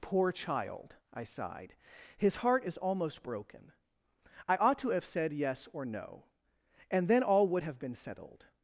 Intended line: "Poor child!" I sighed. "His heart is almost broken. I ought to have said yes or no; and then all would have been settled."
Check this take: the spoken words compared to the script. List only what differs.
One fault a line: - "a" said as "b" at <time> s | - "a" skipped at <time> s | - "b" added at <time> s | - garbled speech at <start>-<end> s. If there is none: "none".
none